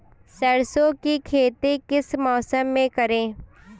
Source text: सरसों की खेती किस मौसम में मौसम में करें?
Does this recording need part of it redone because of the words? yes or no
yes